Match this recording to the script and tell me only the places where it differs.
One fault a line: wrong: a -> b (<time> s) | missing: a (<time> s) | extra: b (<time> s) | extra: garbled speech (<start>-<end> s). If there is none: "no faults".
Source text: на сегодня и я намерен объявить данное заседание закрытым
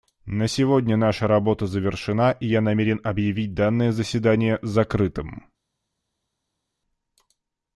extra: наша работа завершена (1.0 s)